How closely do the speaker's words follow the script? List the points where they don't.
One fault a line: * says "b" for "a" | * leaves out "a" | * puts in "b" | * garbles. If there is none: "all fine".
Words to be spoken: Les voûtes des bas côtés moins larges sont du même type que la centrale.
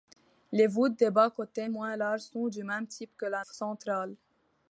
all fine